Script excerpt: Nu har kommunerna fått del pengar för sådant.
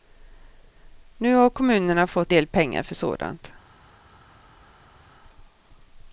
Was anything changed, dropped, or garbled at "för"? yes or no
no